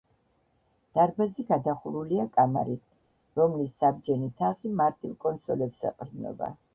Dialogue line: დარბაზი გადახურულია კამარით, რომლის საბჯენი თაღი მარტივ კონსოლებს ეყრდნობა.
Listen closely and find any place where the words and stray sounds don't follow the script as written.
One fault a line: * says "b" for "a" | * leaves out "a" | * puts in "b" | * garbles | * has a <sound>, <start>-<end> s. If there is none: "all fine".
all fine